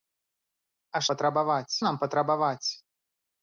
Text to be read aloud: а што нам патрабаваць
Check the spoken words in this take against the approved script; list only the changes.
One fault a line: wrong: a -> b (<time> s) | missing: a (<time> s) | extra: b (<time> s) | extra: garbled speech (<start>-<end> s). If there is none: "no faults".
wrong: што -> патрабаваць (1.1 s)